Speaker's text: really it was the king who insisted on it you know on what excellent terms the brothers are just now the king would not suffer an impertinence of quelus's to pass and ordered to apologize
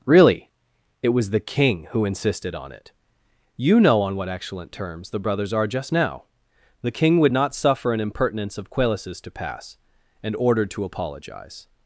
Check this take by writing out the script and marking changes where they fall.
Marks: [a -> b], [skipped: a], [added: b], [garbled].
really it was the king who insisted on it you know on what excellent terms the brothers are just now the king would not suffer an impertinence of quelus's to pass and ordered to apologize